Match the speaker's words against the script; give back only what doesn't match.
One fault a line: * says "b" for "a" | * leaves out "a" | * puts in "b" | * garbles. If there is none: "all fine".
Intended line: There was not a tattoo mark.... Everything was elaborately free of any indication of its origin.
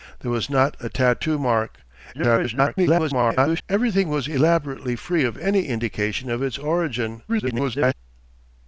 * garbles
* garbles